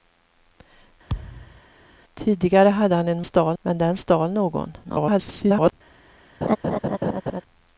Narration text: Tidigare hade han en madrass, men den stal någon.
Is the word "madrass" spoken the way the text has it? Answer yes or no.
no